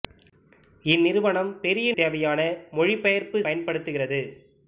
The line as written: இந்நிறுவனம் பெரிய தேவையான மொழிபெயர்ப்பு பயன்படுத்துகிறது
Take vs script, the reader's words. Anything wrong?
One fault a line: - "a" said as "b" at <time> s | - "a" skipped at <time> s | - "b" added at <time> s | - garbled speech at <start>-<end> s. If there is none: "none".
none